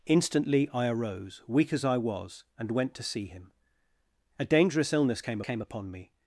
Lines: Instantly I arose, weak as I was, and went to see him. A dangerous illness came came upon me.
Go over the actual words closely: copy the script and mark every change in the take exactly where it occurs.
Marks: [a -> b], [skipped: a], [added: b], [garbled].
Instantly I arose, weak as I was, and went to see him. A dangerous illness came came upon me.